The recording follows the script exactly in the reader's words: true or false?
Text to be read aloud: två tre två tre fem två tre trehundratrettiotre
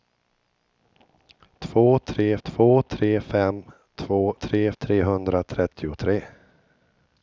true